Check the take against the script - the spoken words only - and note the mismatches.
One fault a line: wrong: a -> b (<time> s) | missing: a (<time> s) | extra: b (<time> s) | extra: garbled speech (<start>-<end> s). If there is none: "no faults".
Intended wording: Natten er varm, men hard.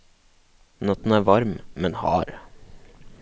no faults